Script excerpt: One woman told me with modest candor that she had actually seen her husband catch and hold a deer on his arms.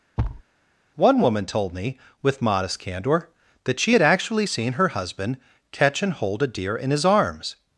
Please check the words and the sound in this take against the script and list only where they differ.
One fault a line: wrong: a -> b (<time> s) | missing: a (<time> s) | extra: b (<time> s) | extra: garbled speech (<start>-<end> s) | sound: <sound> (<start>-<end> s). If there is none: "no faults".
sound: thud (0.2-0.4 s)
wrong: on -> in (6.7 s)